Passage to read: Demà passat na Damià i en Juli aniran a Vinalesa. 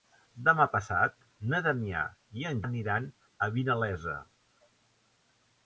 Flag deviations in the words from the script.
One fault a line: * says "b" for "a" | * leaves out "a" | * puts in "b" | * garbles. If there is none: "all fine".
* leaves out "Juli"